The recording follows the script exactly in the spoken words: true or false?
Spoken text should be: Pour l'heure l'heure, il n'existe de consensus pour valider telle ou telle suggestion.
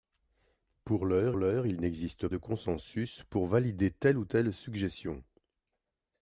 true